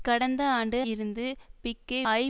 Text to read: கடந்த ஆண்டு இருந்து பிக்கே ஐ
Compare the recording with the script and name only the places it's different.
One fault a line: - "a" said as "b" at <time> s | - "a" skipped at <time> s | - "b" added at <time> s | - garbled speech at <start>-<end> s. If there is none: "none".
none